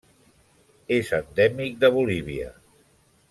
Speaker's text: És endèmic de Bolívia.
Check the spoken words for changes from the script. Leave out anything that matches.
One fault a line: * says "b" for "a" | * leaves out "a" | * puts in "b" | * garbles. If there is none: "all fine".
all fine